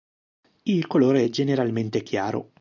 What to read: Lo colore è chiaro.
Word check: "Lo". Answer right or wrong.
wrong